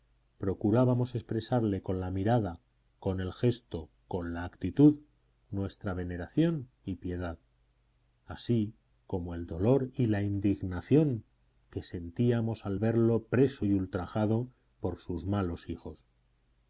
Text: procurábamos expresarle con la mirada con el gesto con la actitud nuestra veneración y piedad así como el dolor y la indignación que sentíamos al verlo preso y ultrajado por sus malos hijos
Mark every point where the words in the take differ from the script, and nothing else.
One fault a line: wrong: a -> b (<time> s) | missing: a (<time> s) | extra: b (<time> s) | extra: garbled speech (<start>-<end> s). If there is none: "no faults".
no faults